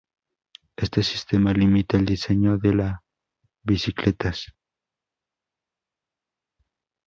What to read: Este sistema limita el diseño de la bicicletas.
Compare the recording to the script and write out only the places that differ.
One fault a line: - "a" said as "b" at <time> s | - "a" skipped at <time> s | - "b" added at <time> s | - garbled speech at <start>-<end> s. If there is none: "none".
none